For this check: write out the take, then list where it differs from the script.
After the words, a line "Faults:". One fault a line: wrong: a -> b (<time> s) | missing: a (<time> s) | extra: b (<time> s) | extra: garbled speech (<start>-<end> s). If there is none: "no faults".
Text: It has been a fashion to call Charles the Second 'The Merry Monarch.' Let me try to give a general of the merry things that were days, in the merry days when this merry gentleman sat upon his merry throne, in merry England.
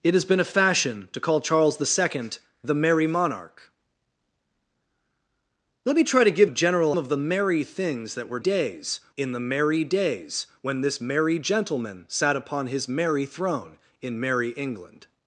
It has been a fashion to call Charles the Second 'The Merry Monarch.' Let me try to give a general of the merry things that were days, in the merry days when this merry gentleman sat upon his merry throne, in merry England.
Faults:
no faults